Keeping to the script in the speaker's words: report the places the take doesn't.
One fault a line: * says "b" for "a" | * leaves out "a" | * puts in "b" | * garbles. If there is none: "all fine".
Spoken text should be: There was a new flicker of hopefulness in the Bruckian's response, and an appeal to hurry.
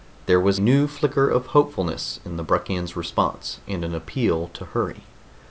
* leaves out "a"